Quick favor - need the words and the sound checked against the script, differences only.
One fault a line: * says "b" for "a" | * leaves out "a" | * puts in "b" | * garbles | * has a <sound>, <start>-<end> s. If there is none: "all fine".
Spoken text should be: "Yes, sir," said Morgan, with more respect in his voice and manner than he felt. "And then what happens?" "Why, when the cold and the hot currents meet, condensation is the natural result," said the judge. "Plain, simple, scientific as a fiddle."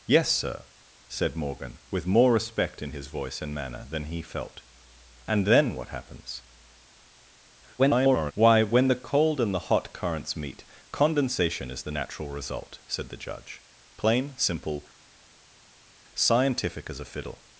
* garbles